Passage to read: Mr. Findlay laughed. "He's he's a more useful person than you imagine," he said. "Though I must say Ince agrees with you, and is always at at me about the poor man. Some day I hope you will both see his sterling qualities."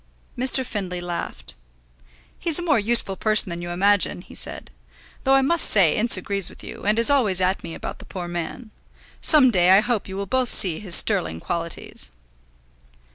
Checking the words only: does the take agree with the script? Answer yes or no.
no